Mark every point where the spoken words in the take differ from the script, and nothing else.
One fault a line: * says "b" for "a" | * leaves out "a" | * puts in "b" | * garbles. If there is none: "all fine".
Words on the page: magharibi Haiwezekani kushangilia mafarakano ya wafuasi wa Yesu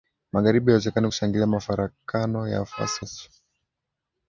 * leaves out "wa"